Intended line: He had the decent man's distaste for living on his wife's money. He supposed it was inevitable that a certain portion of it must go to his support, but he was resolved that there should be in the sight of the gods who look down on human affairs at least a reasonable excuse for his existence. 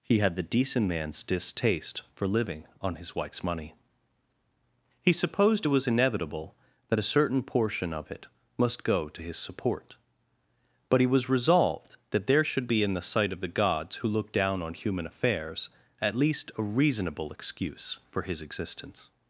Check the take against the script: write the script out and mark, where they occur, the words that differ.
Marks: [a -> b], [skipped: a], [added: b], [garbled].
He had the decent man's distaste for living on his wife's money. He supposed it was inevitable that a certain portion of it must go to his support, but he was resolved that there should be in the sight of the gods who look down on human affairs at least a reasonable excuse for his existence.